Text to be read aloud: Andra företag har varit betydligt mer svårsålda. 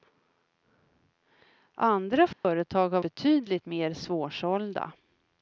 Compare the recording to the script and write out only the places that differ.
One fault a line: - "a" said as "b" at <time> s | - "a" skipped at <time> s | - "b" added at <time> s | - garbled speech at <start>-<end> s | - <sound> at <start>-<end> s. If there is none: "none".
- dropout at 2.3-2.4 s
- "varit" skipped at 3.0 s